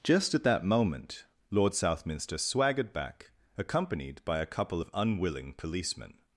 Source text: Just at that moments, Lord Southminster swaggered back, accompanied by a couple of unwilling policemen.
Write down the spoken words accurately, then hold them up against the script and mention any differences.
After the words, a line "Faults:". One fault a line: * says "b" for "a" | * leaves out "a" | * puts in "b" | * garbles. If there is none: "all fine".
Just at that moment, Lord Southminster swaggered back, accompanied by a couple of unwilling policemen.
Faults:
* says "moment" for "moments"